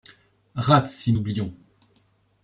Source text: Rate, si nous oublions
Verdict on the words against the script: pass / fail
fail